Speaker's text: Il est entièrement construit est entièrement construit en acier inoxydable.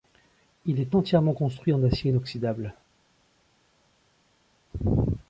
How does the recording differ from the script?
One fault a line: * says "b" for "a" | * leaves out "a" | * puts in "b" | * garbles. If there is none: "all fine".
* leaves out "est entièrement construit"